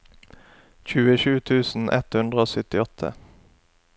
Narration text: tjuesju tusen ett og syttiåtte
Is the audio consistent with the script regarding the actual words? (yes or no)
no